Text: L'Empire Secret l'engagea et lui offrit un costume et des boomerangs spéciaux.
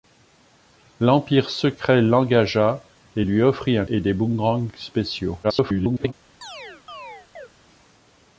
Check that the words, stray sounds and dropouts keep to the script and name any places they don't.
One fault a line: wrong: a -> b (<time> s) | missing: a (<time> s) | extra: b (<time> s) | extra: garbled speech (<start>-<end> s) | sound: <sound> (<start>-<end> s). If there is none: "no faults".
missing: costume (3.8 s)
extra: garbled speech (5.4-6.1 s)
sound: chirp (6.4-7.5 s)